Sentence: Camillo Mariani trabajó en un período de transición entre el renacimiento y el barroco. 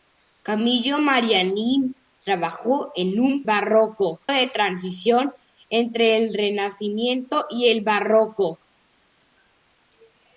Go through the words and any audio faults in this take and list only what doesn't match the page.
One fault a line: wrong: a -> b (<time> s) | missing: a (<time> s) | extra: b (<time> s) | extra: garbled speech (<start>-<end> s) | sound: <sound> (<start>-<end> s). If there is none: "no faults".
wrong: período -> barroco (3.4 s)